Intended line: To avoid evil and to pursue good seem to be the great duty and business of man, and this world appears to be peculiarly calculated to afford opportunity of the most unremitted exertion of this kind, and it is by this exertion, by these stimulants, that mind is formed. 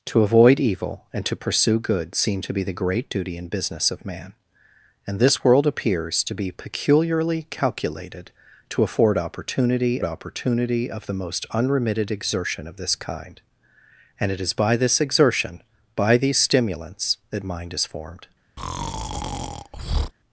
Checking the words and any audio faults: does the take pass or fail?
fail